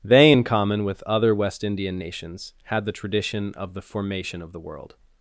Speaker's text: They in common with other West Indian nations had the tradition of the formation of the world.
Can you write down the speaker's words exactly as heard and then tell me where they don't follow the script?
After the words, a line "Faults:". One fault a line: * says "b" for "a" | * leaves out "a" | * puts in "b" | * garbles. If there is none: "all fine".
They in common with other West Indian nations had the tradition of the formation of the world.
Faults:
all fine